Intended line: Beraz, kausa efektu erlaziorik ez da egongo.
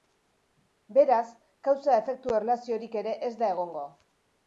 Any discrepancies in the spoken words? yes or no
yes